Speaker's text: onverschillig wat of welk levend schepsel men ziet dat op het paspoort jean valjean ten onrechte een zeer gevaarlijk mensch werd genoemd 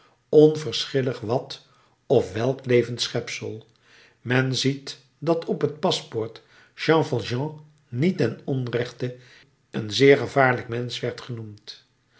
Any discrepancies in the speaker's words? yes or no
yes